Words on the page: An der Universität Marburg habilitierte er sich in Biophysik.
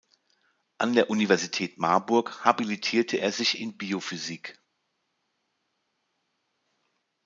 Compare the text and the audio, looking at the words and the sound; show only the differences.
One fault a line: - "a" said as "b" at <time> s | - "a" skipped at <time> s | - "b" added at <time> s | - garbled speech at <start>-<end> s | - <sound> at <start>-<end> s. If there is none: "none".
none